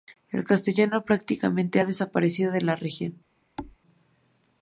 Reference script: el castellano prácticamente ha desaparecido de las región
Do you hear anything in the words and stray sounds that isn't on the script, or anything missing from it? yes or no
yes